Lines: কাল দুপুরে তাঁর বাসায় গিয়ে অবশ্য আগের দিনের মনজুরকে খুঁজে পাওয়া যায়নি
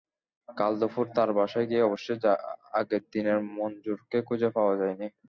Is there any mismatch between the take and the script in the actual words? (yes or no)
no